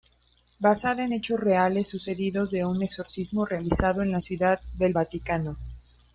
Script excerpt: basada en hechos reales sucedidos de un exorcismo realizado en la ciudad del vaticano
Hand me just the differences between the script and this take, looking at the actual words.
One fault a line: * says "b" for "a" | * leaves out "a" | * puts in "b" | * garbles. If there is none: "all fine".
all fine